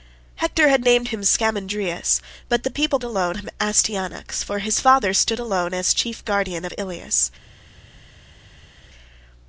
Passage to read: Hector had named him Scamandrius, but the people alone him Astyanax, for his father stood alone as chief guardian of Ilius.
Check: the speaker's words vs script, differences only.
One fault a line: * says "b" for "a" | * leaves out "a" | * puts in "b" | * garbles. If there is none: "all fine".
all fine